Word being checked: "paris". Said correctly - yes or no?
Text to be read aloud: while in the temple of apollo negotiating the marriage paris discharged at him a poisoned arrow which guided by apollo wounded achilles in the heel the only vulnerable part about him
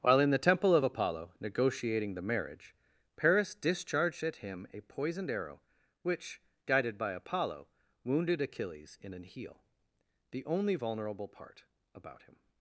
yes